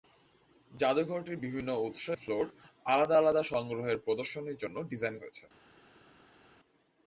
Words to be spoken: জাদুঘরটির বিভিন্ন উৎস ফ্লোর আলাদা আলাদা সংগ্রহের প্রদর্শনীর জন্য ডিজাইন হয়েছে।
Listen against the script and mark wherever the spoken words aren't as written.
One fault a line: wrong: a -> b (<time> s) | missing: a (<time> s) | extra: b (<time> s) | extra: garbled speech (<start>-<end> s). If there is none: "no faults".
no faults